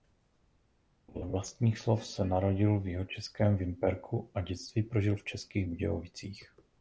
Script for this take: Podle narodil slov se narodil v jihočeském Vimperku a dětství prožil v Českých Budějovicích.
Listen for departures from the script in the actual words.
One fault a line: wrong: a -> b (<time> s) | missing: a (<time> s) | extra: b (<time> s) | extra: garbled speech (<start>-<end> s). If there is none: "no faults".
wrong: narodil -> vlastních (1.3 s)